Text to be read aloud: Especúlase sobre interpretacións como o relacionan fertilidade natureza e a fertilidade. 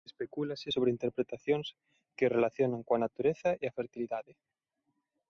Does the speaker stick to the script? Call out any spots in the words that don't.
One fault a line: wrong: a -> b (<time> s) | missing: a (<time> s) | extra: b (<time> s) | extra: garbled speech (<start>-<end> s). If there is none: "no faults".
wrong: como -> que (2.2 s)
wrong: fertilidade -> coa (2.9 s)